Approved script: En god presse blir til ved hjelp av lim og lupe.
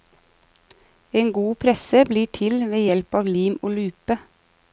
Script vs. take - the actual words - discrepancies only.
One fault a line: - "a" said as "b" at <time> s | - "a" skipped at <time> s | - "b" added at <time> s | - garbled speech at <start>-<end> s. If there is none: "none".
none